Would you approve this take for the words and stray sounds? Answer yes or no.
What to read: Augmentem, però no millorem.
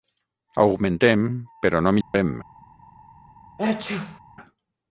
no